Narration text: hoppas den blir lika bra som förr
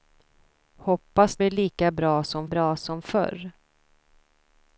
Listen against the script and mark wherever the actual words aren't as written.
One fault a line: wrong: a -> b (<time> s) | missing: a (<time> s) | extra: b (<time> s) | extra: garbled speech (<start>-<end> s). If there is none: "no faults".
missing: den (1.4 s)
extra: bra som (2.4 s)